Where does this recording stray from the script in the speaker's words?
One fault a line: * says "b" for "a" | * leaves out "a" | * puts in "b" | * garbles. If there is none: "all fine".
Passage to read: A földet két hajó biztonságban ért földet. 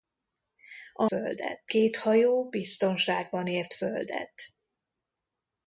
all fine